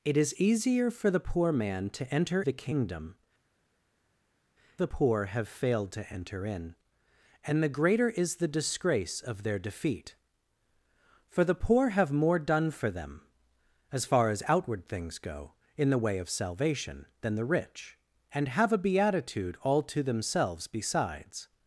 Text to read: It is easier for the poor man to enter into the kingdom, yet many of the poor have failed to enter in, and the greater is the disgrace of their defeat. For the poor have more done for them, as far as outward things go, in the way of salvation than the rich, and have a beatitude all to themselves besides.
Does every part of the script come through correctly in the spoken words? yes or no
no